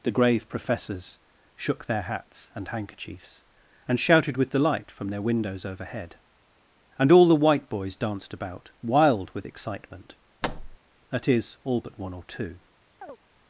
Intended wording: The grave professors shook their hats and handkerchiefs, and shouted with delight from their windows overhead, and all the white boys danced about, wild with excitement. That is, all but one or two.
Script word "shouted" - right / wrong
right